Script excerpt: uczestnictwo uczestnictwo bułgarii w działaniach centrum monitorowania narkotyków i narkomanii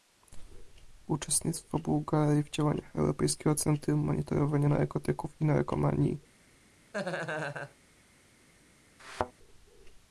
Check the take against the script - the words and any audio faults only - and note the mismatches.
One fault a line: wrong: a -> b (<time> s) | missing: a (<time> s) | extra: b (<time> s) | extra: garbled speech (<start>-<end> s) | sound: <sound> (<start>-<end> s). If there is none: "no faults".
missing: uczestnictwo (1.8 s)
extra: europejskiego (3.0 s)
sound: laugh (6.9-7.8 s)
sound: thud (9.0-9.3 s)